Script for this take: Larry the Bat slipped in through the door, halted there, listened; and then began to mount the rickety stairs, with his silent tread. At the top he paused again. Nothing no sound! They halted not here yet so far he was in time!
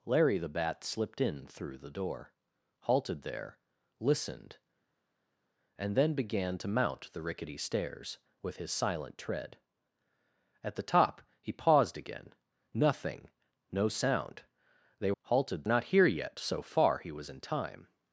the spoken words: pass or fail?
pass